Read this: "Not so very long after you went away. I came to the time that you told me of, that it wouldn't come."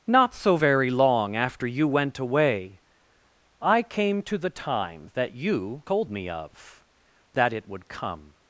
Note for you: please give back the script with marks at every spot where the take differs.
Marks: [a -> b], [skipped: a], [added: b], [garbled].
"Not so very long after you went away. I came to the time that you told me of, that it [wouldn't -> would] come."